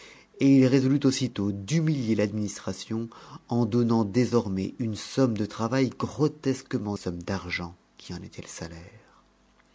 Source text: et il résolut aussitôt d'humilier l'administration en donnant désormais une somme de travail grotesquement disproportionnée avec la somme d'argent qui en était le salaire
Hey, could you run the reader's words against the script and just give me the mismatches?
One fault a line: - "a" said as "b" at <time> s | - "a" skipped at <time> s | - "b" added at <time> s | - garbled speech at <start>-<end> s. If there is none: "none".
- "disproportionnée avec la" skipped at 7.0 s